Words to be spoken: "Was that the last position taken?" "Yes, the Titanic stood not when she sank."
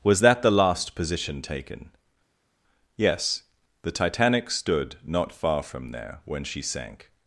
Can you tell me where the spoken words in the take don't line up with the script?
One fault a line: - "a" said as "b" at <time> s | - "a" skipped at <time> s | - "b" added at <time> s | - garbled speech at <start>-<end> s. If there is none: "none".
- "far from there" added at 5.3 s